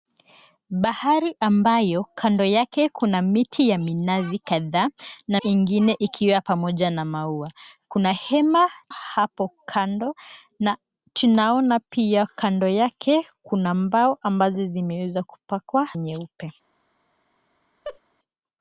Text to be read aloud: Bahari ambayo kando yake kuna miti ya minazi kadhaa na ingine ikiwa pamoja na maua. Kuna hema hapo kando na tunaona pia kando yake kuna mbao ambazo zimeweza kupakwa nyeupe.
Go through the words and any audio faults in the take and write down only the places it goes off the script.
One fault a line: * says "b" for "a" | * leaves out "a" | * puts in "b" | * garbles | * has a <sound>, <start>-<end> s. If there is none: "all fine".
* has a laugh, 17.8-18.0 s